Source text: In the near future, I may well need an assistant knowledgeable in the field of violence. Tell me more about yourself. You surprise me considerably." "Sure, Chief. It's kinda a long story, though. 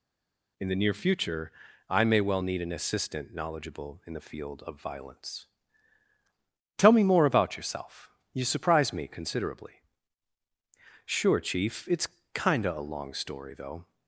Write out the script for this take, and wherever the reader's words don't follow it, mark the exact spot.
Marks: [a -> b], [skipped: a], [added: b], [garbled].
In the near future, I may well need an assistant knowledgeable in the field of violence. Tell me more about yourself. You surprise me considerably." "Sure, Chief. It's kinda a long story, though.